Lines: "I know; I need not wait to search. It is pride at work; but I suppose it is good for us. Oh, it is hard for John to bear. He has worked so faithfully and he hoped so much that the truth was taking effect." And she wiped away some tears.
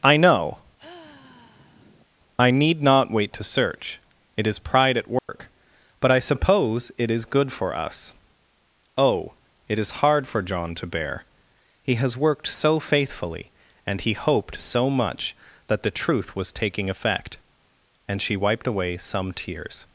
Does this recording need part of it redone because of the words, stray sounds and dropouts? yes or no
yes